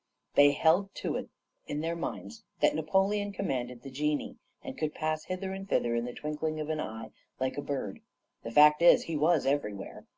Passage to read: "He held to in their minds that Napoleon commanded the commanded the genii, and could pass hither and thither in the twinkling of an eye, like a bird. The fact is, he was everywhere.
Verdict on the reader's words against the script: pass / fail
fail